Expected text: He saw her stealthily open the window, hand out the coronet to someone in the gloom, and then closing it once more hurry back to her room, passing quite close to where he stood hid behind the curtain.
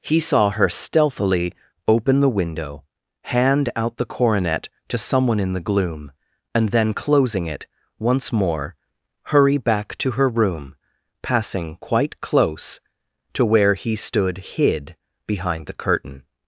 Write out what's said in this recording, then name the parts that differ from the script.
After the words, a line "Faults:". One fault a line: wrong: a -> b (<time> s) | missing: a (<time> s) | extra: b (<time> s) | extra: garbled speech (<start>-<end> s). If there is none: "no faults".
He saw her stealthily open the window, hand out the coronet to someone in the gloom, and then closing it once more hurry back to her room, passing quite close to where he stood hid behind the curtain.
Faults:
no faults